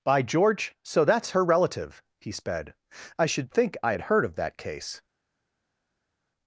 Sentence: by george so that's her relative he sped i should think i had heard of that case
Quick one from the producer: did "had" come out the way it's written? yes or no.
yes